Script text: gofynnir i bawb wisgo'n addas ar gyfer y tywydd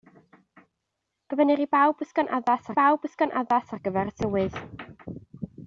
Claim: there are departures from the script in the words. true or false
true